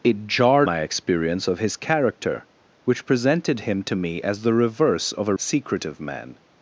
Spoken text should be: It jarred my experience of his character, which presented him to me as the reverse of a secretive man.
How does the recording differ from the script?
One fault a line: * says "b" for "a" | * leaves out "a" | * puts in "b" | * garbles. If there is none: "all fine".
all fine